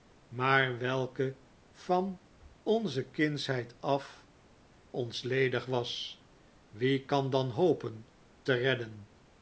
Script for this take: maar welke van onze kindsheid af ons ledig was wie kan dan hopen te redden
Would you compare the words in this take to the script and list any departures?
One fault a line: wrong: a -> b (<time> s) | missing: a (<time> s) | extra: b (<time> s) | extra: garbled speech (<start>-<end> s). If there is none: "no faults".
no faults